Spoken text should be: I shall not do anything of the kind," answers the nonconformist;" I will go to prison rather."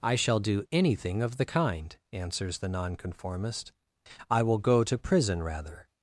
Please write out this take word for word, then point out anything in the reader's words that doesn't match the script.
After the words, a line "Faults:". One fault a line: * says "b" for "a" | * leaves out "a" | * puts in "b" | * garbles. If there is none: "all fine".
I shall do anything of the kind," answers the nonconformist;" I will go to prison rather."
Faults:
* leaves out "not"